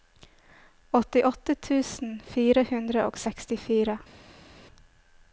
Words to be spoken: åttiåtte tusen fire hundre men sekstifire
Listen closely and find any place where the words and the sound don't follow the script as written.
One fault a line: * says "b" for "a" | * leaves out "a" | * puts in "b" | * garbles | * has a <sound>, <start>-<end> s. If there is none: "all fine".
* says "og" for "men"